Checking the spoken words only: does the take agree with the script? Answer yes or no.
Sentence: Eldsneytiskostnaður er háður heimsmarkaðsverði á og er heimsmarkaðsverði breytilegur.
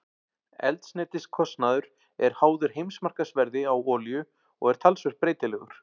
no